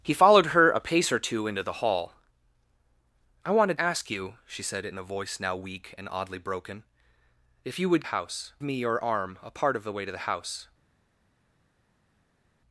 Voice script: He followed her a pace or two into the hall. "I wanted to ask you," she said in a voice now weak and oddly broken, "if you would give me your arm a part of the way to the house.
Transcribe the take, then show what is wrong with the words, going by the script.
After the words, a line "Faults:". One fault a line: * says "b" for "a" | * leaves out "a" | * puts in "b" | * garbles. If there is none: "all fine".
He followed her a pace or two into the hall. "I wanted ask you," she said in a voice now weak and oddly broken, "if you would house me your arm a part of the way to the house.
Faults:
* leaves out "to"
* says "house" for "give"